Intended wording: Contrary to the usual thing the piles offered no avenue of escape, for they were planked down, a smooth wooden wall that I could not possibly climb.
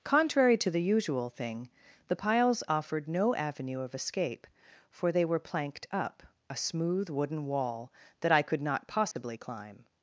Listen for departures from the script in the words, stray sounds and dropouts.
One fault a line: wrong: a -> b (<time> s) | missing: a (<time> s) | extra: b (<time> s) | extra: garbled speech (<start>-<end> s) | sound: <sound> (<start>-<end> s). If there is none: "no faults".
wrong: down -> up (5.9 s)
sound: dropout (9.1-9.2 s)